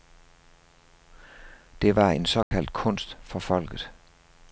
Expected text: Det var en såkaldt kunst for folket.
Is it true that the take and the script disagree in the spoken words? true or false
false